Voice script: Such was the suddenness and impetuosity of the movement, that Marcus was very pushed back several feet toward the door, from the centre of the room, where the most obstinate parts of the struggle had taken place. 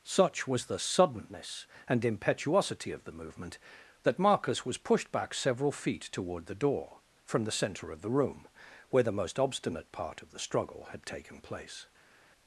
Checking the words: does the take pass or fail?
fail